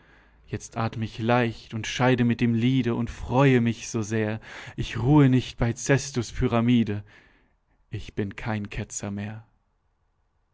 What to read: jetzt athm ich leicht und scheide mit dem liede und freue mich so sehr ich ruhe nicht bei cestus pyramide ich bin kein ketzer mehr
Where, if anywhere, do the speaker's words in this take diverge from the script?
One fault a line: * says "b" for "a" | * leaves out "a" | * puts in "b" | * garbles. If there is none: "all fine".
all fine